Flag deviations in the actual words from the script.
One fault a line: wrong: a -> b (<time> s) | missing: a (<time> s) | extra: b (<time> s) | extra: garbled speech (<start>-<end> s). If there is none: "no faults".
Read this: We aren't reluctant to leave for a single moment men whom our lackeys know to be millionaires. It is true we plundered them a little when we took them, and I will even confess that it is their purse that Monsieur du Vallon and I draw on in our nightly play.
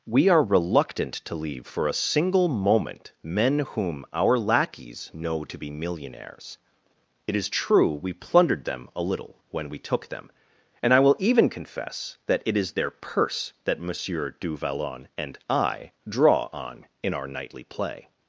wrong: aren't -> are (0.3 s)